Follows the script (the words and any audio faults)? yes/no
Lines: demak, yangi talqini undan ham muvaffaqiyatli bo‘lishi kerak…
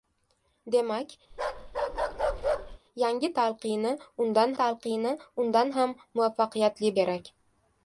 no